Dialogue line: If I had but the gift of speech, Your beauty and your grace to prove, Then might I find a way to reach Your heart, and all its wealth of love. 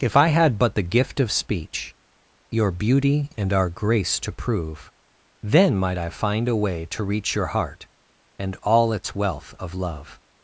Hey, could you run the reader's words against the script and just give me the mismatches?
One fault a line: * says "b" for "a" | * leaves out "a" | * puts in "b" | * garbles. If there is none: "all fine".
* says "our" for "your"